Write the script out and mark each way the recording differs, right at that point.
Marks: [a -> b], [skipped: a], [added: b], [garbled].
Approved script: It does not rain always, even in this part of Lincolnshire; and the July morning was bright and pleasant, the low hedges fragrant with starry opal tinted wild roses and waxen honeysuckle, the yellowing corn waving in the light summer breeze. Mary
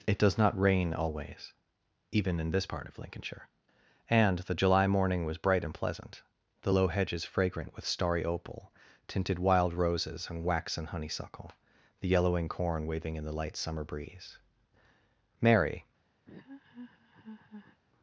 It does not rain always, even in this part of Lincolnshire; and the July morning was bright and pleasant, the low hedges fragrant with starry opal tinted wild roses and waxen honeysuckle, the yellowing corn waving in the light summer breeze. Mary